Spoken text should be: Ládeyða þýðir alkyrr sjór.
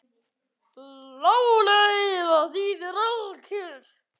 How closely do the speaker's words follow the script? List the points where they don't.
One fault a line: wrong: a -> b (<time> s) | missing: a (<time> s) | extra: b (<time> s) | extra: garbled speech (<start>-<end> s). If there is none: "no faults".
no faults